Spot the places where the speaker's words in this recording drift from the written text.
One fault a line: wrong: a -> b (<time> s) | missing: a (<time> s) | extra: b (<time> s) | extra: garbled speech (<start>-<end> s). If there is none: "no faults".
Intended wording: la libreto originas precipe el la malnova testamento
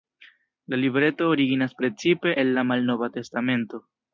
no faults